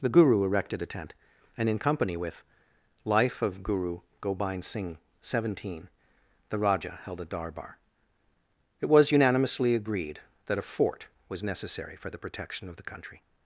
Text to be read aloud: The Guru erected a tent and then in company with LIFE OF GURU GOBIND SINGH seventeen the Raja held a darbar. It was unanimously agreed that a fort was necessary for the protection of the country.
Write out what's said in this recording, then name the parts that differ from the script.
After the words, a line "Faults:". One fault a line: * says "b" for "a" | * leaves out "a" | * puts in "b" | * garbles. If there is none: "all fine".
The Guru erected a tent and in company with LIFE OF GURU GOBIND SINGH seventeen the Raja held a darbar. It was unanimously agreed that a fort was necessary for the protection of the country.
Faults:
* leaves out "then"